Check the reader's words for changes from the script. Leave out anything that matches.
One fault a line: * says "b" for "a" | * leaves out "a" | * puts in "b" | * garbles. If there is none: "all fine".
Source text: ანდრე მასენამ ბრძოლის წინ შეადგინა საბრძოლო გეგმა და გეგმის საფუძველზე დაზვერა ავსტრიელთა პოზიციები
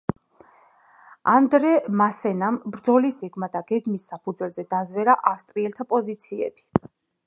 * leaves out "წინ შეადგინა საბრძოლო"